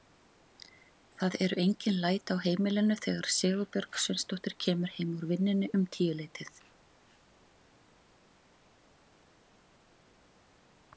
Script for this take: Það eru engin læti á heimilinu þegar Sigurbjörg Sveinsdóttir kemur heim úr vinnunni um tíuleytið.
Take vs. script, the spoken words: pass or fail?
pass